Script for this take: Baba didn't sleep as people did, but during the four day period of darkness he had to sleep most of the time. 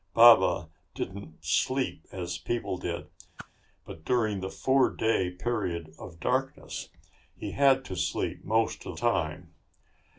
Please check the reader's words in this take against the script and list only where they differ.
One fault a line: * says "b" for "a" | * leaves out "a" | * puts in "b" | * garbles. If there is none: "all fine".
* leaves out "the"